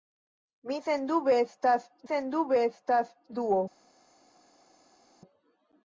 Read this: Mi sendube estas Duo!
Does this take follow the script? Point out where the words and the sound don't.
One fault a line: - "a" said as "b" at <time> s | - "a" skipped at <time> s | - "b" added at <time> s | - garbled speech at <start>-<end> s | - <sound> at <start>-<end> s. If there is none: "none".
- "sendube estas" added at 2.1 s